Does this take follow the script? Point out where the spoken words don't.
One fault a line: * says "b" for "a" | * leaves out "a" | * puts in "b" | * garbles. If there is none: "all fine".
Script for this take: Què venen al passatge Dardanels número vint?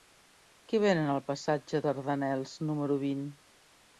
all fine